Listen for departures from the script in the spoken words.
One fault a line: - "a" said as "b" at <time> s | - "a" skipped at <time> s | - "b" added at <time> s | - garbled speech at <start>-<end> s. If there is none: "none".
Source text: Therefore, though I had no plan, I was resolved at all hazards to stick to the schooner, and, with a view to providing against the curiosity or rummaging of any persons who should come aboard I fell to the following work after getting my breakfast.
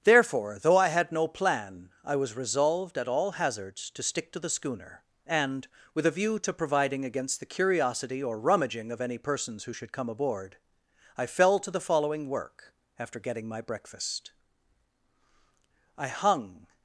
- "I hung" added at 16.0 s